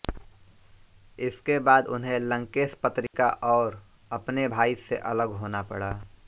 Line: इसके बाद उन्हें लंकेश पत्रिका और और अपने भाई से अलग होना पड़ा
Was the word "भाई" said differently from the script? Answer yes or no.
no